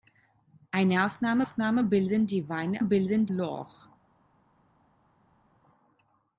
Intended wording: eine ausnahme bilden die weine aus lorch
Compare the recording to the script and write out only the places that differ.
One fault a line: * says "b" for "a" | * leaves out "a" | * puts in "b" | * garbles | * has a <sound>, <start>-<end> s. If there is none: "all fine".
* puts in "ausnahme"
* says "bilden" for "aus"